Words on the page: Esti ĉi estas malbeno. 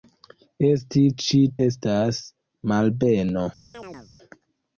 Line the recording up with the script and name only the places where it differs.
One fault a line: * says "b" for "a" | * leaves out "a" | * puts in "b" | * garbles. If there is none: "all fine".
all fine